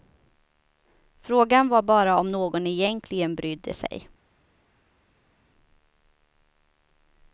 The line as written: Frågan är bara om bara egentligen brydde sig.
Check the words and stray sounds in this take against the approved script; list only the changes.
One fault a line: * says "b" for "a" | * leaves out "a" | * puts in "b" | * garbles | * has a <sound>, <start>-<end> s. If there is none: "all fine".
* says "var" for "är"
* says "någon" for "bara"